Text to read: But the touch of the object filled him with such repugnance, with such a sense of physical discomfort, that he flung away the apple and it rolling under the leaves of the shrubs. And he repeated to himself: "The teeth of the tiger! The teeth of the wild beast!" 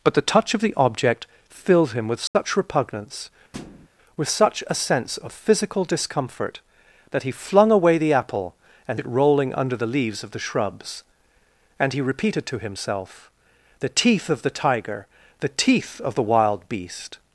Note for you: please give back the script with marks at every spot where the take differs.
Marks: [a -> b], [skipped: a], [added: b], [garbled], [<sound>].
But the touch of the object filled him with such [dropout] repugnance, [thud] with such a sense of physical discomfort, that he flung away the apple and it rolling under the leaves of the shrubs. And he repeated to himself: "The teeth of the tiger! The teeth of the wild beast!"